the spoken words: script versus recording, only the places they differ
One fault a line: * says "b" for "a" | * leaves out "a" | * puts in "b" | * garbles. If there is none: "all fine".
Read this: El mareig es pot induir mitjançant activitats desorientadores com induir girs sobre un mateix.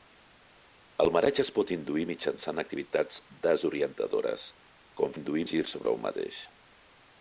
all fine